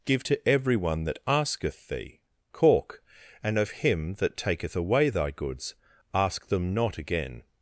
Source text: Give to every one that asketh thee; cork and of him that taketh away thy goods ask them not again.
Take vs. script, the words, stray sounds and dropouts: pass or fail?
pass